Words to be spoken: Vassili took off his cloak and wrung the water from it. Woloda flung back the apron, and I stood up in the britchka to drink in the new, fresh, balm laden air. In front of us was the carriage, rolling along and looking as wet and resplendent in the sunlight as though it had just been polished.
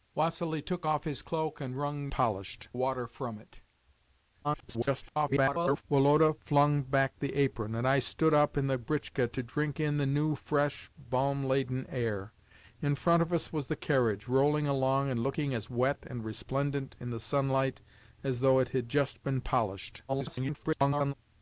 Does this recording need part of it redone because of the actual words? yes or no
yes